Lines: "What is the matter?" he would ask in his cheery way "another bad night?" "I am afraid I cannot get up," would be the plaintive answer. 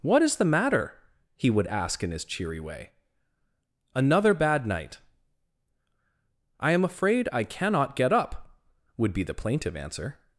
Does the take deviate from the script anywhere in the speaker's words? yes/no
no